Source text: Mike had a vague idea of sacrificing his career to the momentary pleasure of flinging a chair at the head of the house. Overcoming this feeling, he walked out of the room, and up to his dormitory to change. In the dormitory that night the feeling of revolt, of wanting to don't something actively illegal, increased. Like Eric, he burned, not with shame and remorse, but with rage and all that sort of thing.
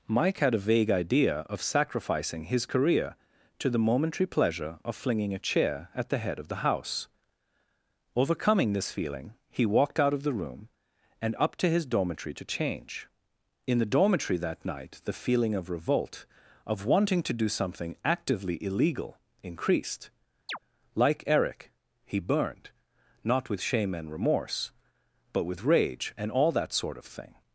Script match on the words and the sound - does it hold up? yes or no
no